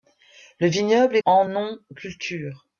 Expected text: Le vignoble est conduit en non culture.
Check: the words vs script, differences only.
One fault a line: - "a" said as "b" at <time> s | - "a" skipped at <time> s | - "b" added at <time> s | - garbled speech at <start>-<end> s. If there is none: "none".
- "conduit" skipped at 1.2 s